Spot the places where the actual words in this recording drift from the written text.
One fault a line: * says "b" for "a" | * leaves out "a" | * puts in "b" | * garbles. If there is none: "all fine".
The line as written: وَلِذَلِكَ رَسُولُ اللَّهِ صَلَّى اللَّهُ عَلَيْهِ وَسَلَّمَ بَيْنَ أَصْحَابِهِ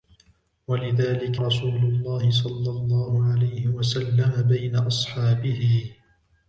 all fine